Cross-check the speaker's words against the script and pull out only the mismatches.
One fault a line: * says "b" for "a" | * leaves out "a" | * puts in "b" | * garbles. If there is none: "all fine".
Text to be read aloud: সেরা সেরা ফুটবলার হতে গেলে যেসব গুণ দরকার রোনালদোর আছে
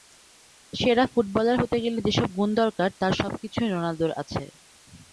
* leaves out "সেরা"
* puts in "তার সবকিছুই"